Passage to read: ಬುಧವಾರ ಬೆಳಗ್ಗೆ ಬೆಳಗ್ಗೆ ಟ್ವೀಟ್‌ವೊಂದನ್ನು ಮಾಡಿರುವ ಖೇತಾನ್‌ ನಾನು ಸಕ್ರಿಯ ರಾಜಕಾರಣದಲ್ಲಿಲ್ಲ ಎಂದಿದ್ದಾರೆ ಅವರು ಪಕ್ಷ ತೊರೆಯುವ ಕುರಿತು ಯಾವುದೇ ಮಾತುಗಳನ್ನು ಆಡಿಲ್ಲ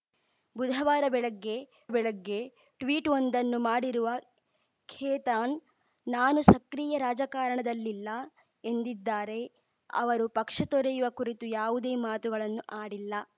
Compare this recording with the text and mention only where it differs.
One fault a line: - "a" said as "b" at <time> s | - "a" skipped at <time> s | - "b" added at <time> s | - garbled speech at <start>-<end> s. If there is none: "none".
none